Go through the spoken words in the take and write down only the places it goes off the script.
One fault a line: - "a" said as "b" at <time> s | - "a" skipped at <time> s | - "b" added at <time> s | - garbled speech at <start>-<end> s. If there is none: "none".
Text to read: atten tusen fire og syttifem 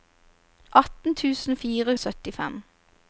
none